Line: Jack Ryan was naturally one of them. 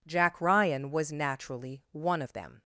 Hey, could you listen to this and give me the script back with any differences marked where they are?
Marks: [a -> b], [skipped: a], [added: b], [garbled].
Jack Ryan was naturally one of them.